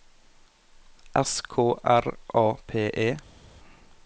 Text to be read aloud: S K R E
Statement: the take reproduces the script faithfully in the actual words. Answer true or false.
false